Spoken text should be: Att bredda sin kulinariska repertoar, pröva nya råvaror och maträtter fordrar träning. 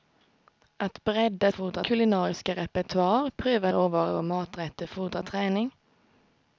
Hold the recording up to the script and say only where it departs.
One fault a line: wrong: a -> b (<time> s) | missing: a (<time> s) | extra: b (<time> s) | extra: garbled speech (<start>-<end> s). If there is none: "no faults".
wrong: sin -> fordrar (1.5 s)
missing: nya (3.7 s)